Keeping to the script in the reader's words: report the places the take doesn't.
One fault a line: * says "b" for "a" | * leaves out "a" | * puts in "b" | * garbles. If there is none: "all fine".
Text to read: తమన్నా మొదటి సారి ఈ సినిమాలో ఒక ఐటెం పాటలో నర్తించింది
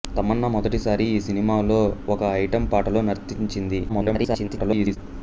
* garbles